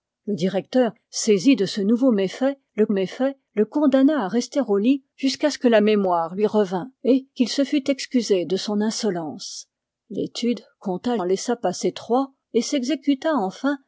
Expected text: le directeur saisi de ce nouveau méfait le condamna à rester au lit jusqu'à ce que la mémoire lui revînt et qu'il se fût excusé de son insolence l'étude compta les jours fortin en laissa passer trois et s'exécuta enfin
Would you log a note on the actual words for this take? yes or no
yes